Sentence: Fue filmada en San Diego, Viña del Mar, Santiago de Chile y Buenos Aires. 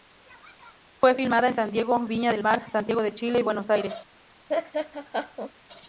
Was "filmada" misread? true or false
false